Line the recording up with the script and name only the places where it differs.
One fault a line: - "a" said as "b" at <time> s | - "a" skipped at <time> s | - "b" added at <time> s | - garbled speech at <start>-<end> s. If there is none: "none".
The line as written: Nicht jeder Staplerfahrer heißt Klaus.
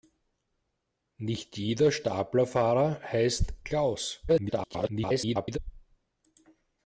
- garbled speech at 4.3-5.6 s